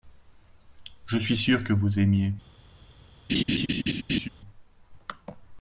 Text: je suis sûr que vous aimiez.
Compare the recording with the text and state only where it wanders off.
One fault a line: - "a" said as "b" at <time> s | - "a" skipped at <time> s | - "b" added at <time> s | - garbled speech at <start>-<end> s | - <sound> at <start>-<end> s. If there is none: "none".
- laugh at 3.3-4.3 s